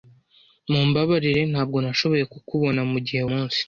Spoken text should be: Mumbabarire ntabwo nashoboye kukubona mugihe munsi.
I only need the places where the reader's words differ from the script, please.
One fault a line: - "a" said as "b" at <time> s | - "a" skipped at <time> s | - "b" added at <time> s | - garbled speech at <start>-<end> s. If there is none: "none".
none